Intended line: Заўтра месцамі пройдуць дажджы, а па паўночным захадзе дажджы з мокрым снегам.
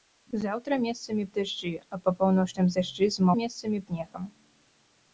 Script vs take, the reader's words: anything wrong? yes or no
yes